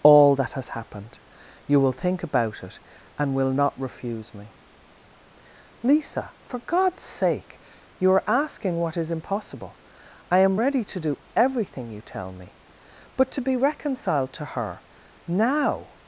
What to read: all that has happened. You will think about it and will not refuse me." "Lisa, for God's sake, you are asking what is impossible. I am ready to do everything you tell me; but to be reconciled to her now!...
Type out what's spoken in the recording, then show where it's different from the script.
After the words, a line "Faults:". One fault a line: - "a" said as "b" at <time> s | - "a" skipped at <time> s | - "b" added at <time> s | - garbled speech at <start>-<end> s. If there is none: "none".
all that has happened. You will think about it and will not refuse me." "Lisa, for God's sake, you are asking what is impossible. I am ready to do everything you tell me; but to be reconciled to her now!...
Faults:
none